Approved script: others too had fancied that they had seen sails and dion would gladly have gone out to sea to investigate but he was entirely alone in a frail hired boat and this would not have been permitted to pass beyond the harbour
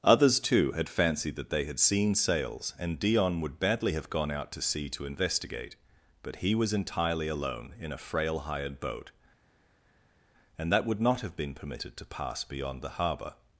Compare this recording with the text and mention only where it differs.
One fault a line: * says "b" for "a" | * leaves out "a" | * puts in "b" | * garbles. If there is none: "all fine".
* says "badly" for "gladly"
* says "that" for "this"